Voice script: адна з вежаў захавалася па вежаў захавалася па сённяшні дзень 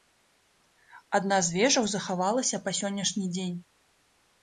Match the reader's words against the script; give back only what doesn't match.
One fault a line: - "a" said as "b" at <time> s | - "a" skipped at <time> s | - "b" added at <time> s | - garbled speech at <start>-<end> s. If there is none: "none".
- "вежаў захавалася па" skipped at 2.8 s